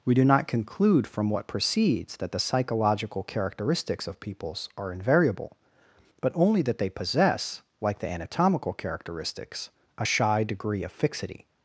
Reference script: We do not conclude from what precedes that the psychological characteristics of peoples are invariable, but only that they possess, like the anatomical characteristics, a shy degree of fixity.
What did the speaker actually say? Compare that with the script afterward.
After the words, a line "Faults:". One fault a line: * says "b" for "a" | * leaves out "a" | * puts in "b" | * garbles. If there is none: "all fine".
We do not conclude from what precedes that the psychological characteristics of peoples are invariable, but only that they possess, like the anatomical characteristics, a shy degree of fixity.
Faults:
all fine